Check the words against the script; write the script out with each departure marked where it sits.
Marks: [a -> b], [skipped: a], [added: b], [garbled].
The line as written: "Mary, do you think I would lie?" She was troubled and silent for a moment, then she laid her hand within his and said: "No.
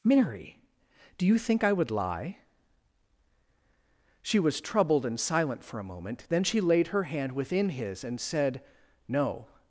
"Mary, do you think I would lie?" She was troubled and silent for a moment, then she laid her hand within his and said: "No.